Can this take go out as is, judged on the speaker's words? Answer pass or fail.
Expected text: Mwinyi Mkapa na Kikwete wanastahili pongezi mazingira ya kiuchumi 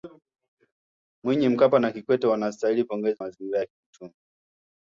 pass